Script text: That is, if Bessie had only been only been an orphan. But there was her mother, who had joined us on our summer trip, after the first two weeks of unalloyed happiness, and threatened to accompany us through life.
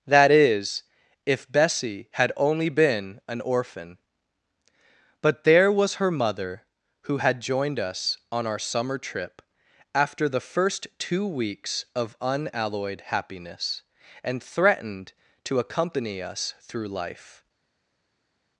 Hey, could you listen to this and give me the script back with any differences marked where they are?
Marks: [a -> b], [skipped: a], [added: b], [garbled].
That is, if Bessie had only been [skipped: only been] an orphan. But there was her mother, who had joined us on our summer trip, after the first two weeks of unalloyed happiness, and threatened to accompany us through life.